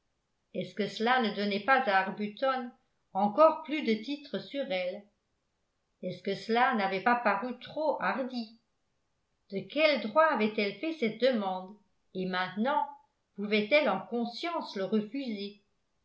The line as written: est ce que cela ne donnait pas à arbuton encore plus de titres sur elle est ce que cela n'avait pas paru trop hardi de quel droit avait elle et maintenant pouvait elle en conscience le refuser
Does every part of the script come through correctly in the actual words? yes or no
no